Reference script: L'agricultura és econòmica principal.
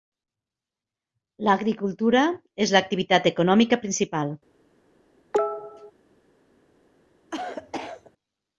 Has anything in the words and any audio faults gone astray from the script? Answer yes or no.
yes